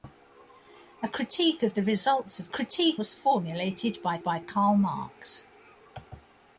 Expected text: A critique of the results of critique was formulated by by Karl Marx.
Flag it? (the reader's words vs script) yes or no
no